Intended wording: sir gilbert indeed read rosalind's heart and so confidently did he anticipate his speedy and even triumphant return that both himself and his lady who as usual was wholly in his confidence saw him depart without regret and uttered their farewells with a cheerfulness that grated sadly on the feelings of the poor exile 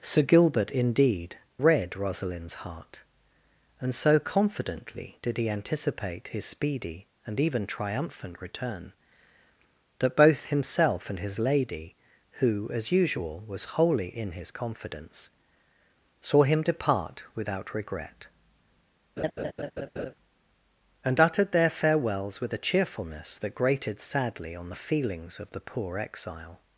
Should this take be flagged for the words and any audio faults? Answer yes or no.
yes